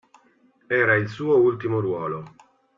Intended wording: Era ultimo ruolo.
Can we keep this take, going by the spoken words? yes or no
no